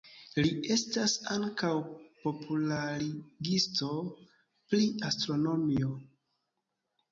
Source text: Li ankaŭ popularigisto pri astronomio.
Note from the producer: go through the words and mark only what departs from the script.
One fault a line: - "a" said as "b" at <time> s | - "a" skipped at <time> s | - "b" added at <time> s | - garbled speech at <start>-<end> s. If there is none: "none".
- "estas" added at 0.8 s